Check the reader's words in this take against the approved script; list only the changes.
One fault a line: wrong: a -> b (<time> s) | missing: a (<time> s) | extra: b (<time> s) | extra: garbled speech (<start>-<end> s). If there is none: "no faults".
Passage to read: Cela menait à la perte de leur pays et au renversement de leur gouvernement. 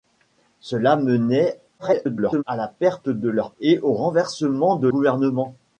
extra: garbled speech (1.8-2.4 s)
missing: pays (3.5 s)
missing: leur (4.9 s)